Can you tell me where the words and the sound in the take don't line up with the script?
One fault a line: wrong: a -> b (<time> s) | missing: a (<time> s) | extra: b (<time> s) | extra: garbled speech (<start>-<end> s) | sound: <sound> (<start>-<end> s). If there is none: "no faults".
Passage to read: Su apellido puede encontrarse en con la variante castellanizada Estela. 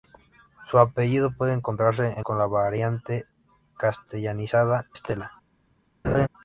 sound: laugh (6.0-6.3 s)